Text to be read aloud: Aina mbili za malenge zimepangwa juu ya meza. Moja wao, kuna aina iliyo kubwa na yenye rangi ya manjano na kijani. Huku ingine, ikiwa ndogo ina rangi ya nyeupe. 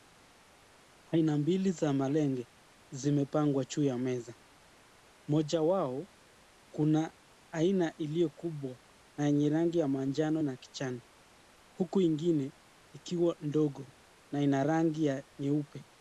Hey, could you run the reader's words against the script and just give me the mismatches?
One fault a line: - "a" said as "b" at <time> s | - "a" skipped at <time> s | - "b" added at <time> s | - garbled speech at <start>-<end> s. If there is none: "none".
- "na" added at 14.3 s